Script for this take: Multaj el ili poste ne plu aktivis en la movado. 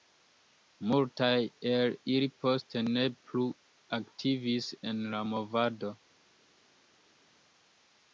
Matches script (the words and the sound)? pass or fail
pass